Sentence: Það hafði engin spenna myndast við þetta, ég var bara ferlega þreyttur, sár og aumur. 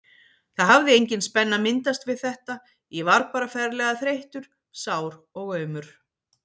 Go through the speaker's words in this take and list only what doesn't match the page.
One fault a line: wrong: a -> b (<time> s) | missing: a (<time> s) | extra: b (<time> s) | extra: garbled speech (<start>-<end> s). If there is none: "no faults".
no faults